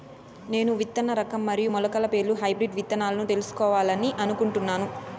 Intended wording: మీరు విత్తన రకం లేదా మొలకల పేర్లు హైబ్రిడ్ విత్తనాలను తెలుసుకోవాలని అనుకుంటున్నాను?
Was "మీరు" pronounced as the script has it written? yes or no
no